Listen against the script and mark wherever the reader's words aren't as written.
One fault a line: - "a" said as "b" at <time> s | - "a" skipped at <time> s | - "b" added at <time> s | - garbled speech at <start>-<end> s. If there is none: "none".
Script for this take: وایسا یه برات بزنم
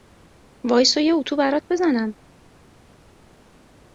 - "اتو" added at 1.1 s